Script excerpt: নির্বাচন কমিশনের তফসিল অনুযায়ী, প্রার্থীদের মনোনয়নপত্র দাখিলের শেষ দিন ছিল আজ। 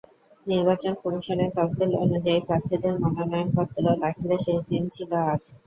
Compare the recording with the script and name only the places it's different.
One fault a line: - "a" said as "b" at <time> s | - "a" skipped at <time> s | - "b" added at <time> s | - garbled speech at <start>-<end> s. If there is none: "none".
none